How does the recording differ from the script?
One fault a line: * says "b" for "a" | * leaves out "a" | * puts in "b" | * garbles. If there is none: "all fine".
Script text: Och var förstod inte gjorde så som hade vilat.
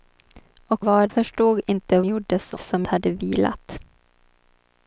all fine